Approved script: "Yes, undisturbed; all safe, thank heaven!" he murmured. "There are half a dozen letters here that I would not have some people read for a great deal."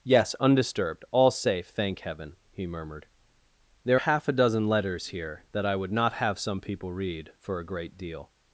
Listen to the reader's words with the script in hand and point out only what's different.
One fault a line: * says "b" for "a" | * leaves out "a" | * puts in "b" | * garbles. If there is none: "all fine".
* leaves out "are"